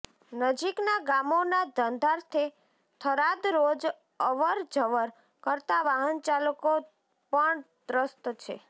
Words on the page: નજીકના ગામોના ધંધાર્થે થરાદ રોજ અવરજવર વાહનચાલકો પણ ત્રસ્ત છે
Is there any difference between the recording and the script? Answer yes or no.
yes